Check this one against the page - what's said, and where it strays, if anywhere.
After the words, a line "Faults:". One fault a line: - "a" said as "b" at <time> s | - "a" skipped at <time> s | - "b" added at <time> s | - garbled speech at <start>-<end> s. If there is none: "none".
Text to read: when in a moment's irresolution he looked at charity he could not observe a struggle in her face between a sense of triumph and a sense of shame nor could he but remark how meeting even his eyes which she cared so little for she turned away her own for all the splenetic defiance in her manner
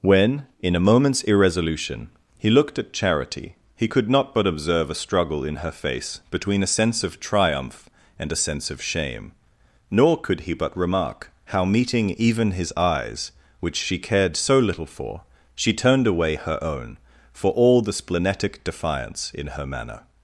when in a moment's irresolution he looked at charity he could not but observe a struggle in her face between a sense of triumph and a sense of shame nor could he but remark how meeting even his eyes which she cared so little for she turned away her own for all the splenetic defiance in her manner
Faults:
- "but" added at 4.3 s